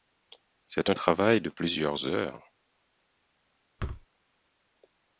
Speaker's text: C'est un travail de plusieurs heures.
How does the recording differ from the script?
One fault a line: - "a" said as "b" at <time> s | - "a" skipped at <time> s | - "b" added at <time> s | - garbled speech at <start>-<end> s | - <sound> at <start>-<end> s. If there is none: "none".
- thud at 3.8-4.1 s